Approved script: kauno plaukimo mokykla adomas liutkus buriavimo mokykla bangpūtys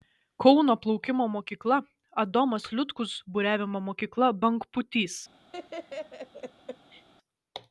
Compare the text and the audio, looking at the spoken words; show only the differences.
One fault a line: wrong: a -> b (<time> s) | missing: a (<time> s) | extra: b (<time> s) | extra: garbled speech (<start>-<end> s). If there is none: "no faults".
no faults